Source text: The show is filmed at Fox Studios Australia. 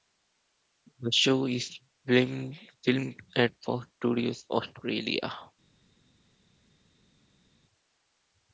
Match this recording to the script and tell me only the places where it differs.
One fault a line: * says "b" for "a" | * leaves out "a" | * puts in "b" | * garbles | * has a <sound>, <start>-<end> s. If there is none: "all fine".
all fine